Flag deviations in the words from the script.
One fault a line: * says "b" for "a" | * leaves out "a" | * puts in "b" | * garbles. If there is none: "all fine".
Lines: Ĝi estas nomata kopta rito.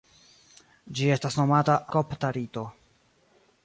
all fine